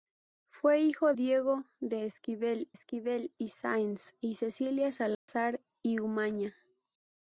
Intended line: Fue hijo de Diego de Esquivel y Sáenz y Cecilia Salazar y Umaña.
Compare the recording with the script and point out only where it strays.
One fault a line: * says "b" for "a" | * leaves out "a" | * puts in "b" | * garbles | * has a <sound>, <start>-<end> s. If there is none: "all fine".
* leaves out "de"
* puts in "Esquivel"
* has a dropout, 5.1-5.3 s